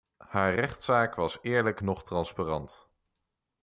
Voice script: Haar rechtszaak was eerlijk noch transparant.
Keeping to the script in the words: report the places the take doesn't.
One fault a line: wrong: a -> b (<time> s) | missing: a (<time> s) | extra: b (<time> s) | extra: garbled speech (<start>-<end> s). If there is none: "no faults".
no faults